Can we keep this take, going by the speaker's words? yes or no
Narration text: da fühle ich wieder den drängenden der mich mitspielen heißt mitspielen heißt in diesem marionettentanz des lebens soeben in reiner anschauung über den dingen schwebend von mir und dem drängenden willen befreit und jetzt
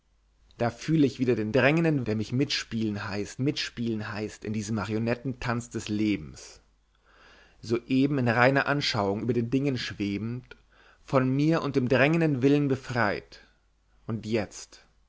yes